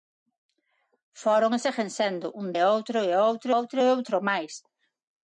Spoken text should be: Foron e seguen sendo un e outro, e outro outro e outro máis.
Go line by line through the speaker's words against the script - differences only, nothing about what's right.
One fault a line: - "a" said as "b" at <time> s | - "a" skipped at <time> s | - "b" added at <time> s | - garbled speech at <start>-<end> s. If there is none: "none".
none